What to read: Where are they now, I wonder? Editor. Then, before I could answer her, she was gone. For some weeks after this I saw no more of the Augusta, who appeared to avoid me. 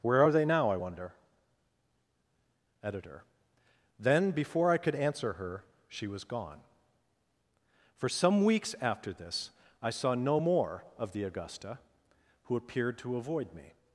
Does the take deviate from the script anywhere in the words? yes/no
no